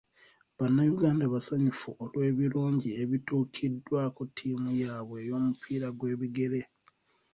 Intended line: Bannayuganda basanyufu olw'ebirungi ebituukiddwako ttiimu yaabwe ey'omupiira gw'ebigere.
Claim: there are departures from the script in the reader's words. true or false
false